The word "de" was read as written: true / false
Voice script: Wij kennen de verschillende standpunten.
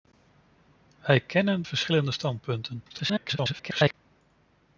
false